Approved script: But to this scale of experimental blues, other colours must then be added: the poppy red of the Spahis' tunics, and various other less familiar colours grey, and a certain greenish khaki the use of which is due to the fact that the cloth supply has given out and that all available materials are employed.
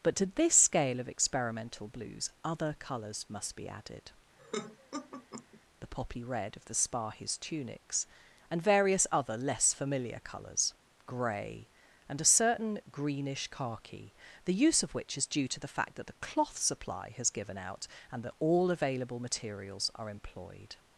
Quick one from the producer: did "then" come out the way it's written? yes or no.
no